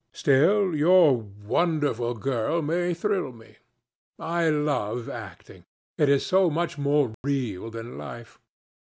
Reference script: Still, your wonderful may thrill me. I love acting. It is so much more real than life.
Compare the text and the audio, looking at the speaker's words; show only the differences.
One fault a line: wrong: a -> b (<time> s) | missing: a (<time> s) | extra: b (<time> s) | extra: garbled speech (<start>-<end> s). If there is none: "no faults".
extra: girl (2.1 s)